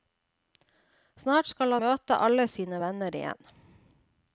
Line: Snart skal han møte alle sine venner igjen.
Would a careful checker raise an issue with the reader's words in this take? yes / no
yes